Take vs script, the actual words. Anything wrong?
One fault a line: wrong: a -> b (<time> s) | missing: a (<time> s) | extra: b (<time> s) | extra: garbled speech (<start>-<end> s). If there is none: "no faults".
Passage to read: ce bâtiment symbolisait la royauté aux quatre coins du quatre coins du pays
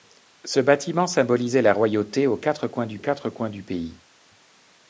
no faults